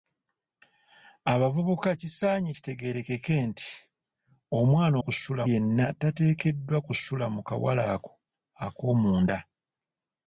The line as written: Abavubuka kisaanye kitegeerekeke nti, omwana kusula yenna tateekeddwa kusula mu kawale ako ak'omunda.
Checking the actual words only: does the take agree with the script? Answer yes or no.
yes